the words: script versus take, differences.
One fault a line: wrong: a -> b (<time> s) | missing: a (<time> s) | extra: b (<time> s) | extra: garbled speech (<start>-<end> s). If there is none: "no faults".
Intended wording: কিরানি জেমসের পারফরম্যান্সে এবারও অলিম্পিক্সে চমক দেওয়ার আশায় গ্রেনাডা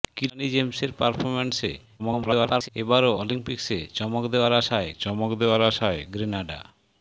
extra: garbled speech (2.0-2.7 s)
extra: চমক দেওয়ার আশায় (5.0 s)